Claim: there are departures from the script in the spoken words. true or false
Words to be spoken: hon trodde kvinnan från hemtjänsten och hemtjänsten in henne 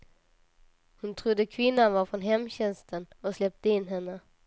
true